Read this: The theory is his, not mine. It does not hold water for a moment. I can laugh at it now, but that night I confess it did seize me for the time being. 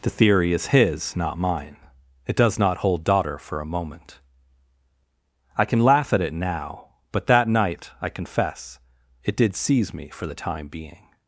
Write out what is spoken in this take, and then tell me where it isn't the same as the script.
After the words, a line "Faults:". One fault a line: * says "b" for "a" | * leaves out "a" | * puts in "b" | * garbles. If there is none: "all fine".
The theory is his, not mine. It does not hold daughter for a moment. I can laugh at it now, but that night I confess it did seize me for the time being.
Faults:
* says "daughter" for "water"